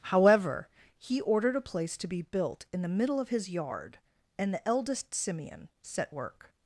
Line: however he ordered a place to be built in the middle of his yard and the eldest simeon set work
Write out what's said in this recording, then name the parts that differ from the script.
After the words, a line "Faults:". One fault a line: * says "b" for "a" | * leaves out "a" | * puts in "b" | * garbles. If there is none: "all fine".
however he ordered a place to be built in the middle of his yard and the eldest simeon set work
Faults:
all fine